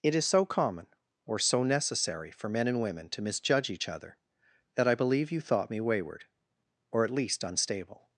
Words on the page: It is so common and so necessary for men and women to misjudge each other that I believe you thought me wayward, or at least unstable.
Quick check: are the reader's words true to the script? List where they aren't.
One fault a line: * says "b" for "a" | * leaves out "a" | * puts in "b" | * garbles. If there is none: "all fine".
* says "or" for "and"